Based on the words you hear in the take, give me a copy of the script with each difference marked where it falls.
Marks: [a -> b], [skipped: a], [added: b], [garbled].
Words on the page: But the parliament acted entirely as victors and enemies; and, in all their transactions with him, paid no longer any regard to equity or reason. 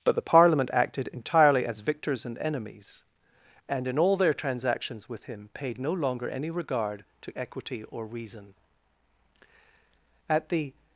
But the parliament acted entirely as victors and enemies; and, in all their transactions with him, paid no longer any regard to equity or reason. [added: At the]